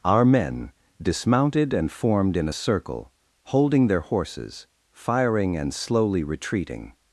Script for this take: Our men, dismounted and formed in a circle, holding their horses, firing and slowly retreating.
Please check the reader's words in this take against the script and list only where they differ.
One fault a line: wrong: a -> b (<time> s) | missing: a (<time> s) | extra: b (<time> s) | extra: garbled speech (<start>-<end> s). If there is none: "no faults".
no faults